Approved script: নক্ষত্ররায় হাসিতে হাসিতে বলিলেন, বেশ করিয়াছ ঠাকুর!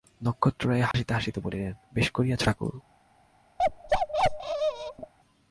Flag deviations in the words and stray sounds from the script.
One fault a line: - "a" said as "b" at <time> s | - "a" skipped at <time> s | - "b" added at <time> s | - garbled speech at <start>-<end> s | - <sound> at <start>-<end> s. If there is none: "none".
- dropout at 0.9-0.9 s
- bark at 3.6-5.1 s